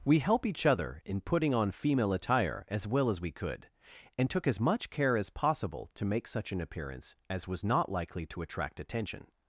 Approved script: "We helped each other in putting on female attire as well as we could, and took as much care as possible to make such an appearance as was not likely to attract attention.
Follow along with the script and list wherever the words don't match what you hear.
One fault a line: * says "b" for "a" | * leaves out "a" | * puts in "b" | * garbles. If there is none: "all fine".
* says "help" for "helped"